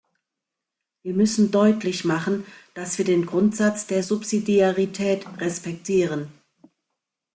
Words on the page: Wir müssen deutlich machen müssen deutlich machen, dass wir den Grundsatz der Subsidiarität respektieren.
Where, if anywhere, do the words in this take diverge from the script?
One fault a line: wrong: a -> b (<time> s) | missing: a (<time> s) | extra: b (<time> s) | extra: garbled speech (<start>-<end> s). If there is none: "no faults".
missing: müssen deutlich machen (2.4 s)